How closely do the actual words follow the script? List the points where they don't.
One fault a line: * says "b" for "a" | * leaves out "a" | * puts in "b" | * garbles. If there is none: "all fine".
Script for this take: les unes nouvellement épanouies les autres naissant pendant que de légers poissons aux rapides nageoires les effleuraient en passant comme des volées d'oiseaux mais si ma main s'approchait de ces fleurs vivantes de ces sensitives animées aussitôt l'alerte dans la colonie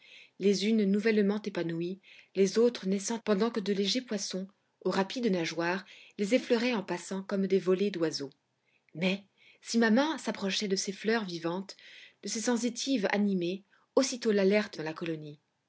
all fine